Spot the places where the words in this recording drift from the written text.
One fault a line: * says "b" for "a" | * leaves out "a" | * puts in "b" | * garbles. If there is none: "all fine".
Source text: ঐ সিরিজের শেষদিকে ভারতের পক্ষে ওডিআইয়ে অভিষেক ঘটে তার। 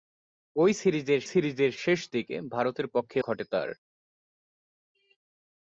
* puts in "সিরিজের"
* leaves out "ওডিআইয়ে অভিষেক"